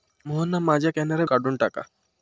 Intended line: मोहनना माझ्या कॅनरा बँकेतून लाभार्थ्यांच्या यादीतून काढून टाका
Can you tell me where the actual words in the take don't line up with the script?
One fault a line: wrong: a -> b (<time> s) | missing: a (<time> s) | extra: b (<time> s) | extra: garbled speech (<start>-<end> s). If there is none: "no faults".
missing: बँकेतून लाभार्थ्यांच्या यादीतून (1.2 s)